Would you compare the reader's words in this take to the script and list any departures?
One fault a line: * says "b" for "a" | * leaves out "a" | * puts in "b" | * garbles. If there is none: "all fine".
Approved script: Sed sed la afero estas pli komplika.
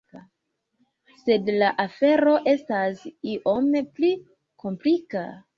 * leaves out "sed"
* puts in "iom"